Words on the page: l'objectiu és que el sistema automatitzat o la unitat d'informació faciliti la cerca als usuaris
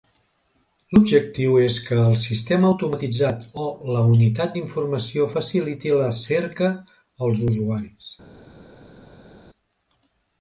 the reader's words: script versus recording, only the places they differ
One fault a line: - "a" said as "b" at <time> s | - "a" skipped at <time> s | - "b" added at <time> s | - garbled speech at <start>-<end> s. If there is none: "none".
none